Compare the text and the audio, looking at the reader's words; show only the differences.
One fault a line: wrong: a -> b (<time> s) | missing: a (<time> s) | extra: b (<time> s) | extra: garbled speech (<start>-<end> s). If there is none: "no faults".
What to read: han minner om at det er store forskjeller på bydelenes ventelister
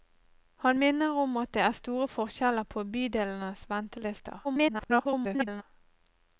extra: garbled speech (4.4-5.6 s)